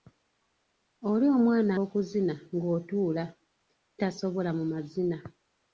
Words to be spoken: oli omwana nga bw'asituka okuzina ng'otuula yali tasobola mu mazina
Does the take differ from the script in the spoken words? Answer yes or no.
yes